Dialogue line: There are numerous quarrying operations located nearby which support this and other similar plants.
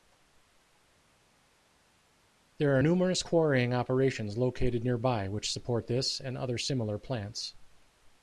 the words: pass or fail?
pass